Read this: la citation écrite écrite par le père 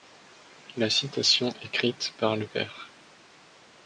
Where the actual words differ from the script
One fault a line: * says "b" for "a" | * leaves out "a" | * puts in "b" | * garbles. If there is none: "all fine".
* leaves out "écrite"